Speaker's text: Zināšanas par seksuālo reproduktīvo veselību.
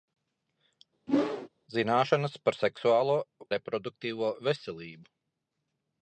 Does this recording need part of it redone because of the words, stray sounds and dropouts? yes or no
yes